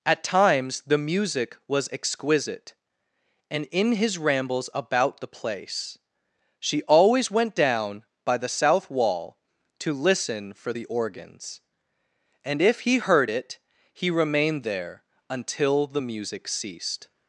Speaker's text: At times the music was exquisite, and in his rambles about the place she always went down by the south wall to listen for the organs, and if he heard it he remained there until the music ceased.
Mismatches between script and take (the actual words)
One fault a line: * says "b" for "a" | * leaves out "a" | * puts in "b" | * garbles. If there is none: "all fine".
all fine